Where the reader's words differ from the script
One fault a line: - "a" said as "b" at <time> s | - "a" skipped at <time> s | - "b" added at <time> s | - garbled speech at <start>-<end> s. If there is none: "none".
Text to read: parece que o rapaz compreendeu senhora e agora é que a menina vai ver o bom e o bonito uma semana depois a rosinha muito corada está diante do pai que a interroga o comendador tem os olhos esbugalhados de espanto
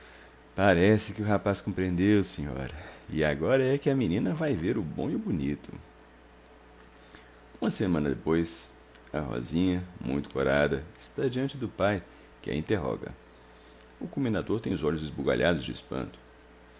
none